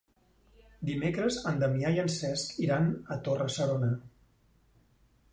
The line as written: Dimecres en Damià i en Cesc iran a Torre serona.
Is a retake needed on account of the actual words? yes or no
no